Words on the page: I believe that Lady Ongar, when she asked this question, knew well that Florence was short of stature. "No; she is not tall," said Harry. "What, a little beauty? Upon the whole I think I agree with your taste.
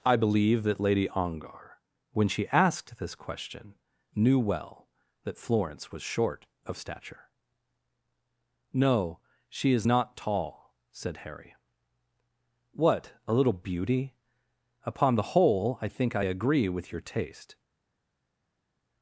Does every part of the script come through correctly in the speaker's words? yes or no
yes